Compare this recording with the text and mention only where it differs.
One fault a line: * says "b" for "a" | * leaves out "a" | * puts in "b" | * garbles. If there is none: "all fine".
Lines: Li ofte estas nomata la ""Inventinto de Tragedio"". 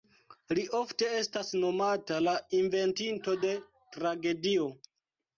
all fine